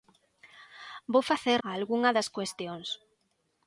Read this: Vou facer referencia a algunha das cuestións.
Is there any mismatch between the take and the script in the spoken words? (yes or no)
yes